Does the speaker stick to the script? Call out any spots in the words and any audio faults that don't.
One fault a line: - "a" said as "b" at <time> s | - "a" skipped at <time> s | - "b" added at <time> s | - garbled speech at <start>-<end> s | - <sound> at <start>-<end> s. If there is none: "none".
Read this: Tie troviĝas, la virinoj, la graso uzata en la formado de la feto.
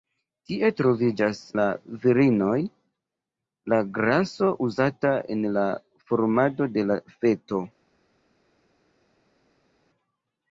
none